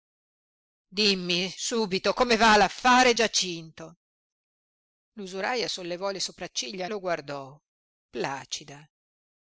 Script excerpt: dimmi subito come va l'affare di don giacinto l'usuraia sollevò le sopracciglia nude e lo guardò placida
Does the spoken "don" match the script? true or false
false